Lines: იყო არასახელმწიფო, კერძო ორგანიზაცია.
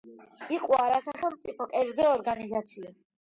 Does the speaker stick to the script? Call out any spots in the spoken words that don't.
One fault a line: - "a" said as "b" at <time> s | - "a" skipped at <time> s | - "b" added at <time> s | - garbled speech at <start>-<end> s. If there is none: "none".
none